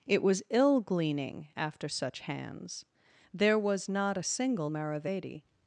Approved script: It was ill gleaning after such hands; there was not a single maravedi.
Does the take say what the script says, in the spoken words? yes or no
yes